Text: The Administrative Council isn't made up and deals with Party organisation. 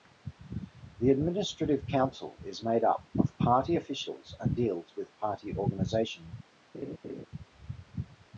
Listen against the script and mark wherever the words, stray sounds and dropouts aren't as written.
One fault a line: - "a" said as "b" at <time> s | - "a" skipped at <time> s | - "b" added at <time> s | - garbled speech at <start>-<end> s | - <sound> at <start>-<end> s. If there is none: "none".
- "isn't" said as "is" at 2.4 s
- "of Party officials" added at 3.2 s
- laugh at 6.7-7.3 s